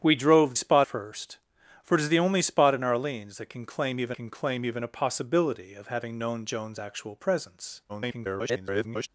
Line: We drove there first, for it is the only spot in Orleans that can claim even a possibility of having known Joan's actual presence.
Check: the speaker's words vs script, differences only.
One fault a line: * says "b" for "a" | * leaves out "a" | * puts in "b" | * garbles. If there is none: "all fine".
* says "spot" for "there"
* puts in "can claim even"
* garbles